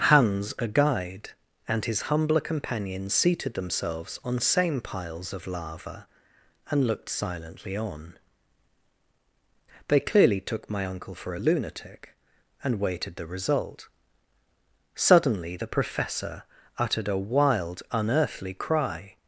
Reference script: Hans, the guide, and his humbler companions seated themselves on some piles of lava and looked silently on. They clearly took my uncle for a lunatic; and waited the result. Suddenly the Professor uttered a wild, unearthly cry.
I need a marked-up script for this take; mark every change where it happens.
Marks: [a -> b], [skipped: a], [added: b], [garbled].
Hans, [the -> a] guide, and his humbler companions seated themselves on [some -> same] piles of lava and looked silently on. They clearly took my uncle for a lunatic; and waited the result. Suddenly the Professor uttered a wild, unearthly cry.